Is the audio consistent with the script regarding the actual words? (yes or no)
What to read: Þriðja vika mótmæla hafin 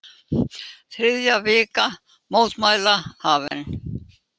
yes